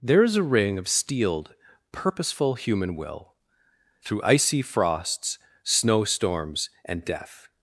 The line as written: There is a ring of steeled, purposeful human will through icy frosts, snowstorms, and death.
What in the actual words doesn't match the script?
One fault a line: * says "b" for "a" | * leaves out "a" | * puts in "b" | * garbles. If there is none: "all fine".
all fine